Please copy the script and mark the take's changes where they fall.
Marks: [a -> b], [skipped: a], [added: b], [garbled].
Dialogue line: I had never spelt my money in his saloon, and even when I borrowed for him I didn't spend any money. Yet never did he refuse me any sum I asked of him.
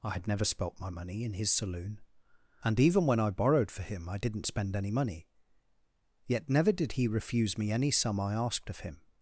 I had never spelt my money in his saloon, and even when I borrowed for him I didn't spend any money. Yet never did he refuse me any sum I asked of him.